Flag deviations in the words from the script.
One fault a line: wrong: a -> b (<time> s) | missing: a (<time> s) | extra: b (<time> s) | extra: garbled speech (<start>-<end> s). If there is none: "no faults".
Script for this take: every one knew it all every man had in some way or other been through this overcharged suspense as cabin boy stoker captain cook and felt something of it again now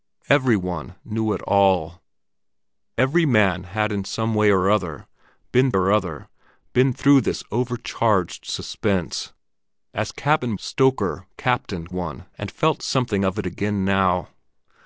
extra: or other been (5.7 s)
missing: boy (10.6 s)
wrong: cook -> one (11.9 s)